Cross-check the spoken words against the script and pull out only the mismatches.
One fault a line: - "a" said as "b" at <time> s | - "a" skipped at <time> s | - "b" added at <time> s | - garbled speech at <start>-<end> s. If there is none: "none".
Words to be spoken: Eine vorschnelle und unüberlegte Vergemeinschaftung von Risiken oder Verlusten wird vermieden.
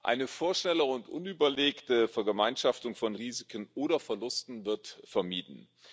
none